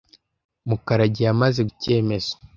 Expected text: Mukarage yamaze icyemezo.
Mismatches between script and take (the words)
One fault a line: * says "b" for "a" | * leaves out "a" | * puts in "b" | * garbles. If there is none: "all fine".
all fine